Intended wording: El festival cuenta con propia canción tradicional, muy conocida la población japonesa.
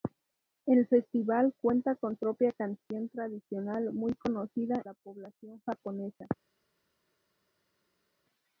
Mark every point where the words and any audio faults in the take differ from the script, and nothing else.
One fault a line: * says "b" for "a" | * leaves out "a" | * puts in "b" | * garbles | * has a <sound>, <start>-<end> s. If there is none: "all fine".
all fine